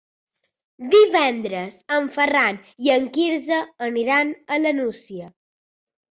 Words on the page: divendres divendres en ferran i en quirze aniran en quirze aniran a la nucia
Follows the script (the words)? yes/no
no